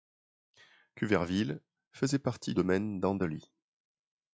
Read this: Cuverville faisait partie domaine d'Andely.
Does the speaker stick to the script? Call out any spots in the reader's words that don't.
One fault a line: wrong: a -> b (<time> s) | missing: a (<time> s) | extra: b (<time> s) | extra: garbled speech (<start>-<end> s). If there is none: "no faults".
no faults